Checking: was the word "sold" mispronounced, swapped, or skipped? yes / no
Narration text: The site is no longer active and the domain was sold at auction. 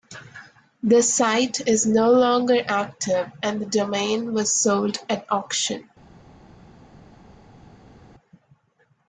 no